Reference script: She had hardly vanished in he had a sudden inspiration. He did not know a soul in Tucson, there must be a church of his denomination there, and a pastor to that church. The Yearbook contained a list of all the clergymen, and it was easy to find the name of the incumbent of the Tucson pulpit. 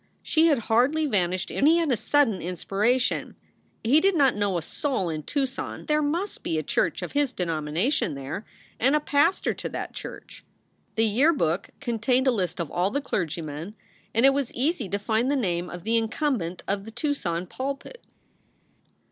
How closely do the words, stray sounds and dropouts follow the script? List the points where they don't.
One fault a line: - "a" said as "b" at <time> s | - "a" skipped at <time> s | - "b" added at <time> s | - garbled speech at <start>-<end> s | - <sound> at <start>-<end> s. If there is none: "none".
none